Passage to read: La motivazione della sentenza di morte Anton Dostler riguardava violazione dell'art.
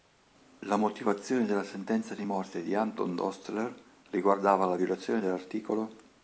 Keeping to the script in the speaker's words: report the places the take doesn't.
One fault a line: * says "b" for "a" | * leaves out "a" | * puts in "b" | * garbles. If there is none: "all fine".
* puts in "di"
* puts in "la"